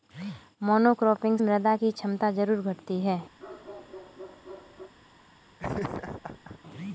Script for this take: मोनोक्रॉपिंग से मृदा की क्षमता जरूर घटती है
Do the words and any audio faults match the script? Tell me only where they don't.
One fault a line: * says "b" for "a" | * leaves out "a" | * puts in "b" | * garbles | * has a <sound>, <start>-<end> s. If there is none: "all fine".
* leaves out "से"
* has a bark, 3.4-4.9 s
* has a laugh, 5.6-6.6 s